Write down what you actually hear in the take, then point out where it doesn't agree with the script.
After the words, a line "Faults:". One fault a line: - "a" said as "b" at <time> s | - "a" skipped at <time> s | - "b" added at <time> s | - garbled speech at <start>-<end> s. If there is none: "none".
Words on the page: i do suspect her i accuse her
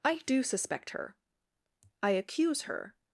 i do suspect her i accuse her
Faults:
none